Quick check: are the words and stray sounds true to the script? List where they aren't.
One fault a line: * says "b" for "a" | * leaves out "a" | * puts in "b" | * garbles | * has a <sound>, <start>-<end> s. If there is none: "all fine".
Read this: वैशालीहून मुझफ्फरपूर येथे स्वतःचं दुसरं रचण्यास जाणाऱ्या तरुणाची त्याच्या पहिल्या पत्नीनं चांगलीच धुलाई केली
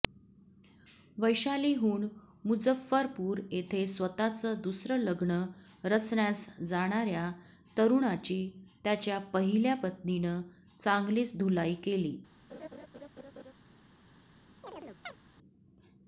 * puts in "लग्न"
* has a laugh, 12.5-13.5 s
* has a chirp, 14.6-15.2 s